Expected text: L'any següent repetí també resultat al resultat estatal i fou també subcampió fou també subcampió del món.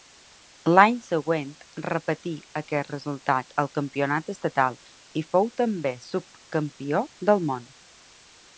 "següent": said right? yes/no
yes